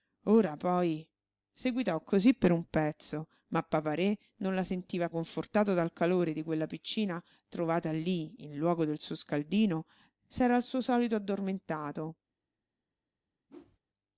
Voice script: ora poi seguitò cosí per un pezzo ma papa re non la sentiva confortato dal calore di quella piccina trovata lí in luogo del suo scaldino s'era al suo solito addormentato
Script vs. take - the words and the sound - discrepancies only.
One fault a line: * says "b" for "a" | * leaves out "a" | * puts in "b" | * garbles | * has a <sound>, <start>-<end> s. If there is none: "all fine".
* has a whoosh, 13.5-13.8 s